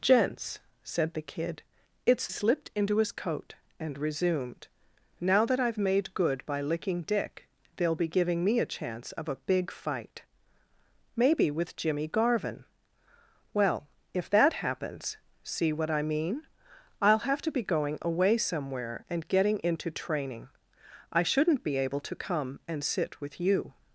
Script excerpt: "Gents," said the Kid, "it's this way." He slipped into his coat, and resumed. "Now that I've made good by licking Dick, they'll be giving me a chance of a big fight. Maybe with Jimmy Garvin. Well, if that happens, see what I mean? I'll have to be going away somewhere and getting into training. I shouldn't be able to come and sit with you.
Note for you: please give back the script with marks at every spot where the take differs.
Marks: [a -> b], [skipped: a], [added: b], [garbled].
"Gents," said the Kid, "it's [skipped: this way." He] slipped into his coat, and resumed. "Now that I've made good by licking Dick, they'll be giving me a chance of a big fight. Maybe with Jimmy Garvin. Well, if that happens, see what I mean? I'll have to be going away somewhere and getting into training. I shouldn't be able to come and sit with you.